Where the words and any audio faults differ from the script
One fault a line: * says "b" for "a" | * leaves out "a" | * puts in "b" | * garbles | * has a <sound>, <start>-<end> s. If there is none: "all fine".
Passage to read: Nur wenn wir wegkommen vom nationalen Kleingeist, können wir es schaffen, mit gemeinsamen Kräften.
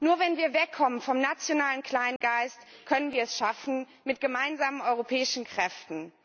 * has a dropout, 2.2-2.2 s
* puts in "europäischen"